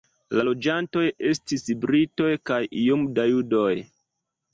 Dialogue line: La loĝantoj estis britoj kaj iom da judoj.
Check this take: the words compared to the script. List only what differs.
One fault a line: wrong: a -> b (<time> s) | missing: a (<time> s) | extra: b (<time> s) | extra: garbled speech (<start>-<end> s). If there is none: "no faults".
no faults